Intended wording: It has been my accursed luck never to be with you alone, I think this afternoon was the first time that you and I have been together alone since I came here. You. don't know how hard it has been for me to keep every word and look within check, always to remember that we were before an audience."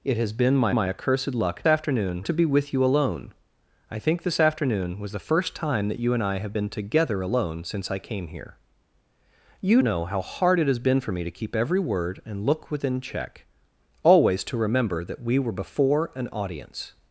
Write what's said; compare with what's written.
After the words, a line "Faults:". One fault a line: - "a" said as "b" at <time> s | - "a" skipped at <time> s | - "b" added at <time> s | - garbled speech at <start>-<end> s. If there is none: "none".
It has been my my accursed luck afternoon to be with you alone, I think this afternoon was the first time that you and I have been together alone since I came here. You. know how hard it has been for me to keep every word and look within check, always to remember that we were before an audience."
Faults:
- "my" added at 0.7 s
- "never" said as "afternoon" at 1.7 s
- "don't" skipped at 9.8 s